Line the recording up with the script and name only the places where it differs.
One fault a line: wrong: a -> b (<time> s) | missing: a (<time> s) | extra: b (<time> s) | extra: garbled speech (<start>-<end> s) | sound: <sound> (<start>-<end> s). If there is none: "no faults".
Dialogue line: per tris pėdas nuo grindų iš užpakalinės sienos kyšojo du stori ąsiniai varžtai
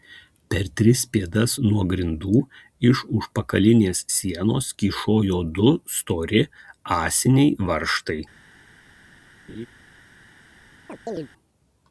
sound: laugh (9.5-9.7 s)
sound: chirp (10.9-11.3 s)